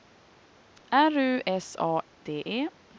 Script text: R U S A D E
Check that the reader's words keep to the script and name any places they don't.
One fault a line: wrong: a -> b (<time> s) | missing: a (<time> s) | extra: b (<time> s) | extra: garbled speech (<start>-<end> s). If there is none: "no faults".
no faults